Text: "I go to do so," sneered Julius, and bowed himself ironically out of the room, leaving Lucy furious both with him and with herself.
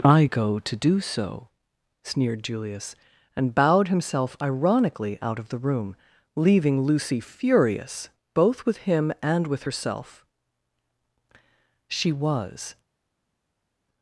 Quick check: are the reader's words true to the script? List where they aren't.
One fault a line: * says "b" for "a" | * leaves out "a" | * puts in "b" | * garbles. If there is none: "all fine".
* puts in "She was"